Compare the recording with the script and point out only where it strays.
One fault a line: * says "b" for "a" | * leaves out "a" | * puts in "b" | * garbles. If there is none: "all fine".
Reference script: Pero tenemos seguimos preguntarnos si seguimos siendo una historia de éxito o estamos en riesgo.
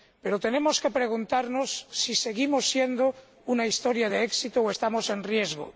* says "que" for "seguimos"